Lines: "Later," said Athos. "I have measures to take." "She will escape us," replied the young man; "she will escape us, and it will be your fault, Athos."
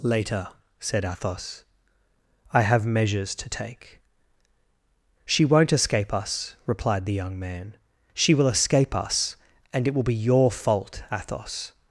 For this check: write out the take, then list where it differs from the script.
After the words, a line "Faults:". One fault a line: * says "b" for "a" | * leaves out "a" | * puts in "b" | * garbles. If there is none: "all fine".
"Later," said Athos. "I have measures to take." "She won't escape us," replied the young man; "she will escape us, and it will be your fault, Athos."
Faults:
* says "won't" for "will"